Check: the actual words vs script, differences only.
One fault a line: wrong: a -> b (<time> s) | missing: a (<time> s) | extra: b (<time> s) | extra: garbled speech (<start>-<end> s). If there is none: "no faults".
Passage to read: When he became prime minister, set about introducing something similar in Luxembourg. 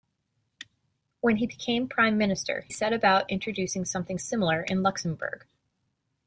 no faults